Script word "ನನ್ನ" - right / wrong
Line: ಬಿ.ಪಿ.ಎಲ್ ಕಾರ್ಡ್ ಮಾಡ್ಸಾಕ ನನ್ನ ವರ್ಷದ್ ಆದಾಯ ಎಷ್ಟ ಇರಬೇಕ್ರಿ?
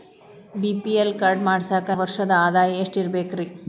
wrong